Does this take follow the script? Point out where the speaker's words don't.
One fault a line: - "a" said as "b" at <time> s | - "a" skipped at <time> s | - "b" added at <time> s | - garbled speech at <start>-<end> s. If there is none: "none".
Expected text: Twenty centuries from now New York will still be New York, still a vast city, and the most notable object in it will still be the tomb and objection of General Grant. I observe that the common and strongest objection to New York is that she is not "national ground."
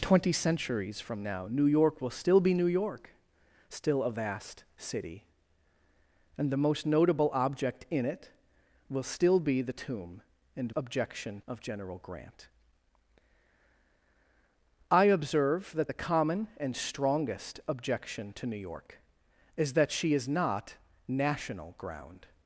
none